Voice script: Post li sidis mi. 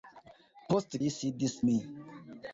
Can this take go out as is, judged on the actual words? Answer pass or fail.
pass